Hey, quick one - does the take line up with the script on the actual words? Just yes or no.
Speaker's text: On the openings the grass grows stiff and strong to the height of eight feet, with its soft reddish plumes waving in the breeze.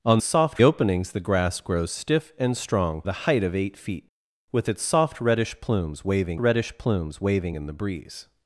no